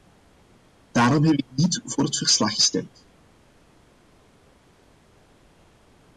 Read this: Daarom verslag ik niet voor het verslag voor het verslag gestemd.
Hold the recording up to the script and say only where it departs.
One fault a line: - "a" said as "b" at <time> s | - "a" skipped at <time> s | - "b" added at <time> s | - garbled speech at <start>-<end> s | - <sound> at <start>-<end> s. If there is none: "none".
- "verslag" said as "heb" at 1.2 s
- "voor het verslag" skipped at 2.5 s